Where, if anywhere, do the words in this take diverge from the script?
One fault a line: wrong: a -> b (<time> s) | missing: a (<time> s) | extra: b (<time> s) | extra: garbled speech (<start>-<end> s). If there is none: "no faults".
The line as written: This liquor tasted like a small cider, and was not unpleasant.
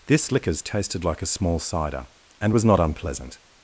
wrong: liquor -> liquors (0.3 s)